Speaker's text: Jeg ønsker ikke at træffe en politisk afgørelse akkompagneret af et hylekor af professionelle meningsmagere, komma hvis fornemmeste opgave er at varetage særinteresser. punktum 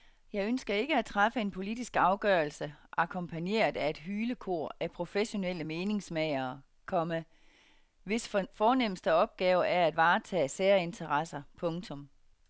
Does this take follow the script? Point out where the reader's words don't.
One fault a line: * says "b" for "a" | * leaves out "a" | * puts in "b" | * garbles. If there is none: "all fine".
all fine